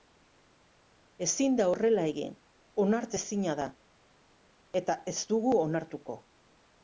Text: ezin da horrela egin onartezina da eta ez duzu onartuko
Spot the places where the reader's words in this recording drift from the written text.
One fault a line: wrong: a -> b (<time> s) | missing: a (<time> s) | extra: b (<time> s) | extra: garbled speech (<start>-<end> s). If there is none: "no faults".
wrong: duzu -> dugu (5.4 s)